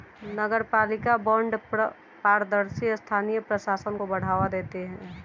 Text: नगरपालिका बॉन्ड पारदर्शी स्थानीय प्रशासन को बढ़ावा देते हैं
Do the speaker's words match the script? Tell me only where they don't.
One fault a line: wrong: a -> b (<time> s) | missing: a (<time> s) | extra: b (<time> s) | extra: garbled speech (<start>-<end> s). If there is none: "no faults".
no faults